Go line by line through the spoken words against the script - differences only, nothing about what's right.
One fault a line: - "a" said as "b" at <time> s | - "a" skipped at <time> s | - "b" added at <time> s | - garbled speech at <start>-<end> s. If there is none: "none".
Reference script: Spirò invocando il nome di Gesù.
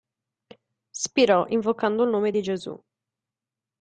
none